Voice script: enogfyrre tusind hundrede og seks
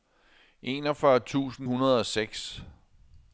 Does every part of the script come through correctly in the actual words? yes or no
yes